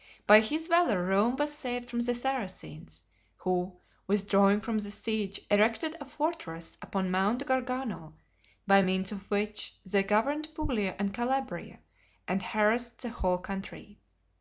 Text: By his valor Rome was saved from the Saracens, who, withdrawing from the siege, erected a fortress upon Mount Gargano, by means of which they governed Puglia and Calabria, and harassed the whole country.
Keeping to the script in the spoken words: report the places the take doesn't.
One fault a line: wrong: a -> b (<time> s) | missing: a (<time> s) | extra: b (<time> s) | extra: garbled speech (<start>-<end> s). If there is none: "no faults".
no faults